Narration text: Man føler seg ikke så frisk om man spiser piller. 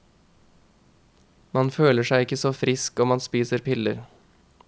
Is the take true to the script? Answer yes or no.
yes